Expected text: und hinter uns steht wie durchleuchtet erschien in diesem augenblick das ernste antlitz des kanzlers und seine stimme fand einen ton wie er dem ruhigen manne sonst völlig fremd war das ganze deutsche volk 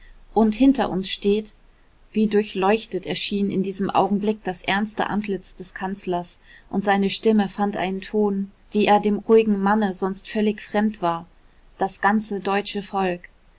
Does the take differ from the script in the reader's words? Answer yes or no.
no